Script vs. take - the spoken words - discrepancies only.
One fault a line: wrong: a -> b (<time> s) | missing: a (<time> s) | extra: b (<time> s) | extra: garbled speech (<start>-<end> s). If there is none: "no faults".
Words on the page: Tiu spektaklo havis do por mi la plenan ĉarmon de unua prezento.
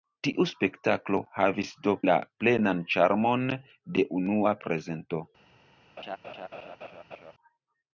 missing: por mi (1.9 s)